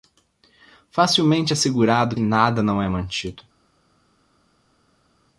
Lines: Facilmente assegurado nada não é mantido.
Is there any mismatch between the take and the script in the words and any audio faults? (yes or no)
no